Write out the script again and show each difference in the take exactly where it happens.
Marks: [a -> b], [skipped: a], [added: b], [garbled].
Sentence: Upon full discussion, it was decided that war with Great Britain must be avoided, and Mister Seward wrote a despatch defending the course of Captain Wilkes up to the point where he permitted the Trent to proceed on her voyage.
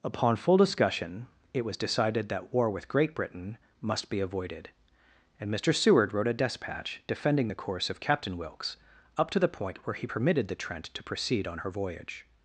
Upon full discussion, it was decided that war with Great Britain must be avoided, and Mister Seward wrote a despatch defending the course of Captain Wilkes up to the point where he permitted the Trent to proceed on her voyage.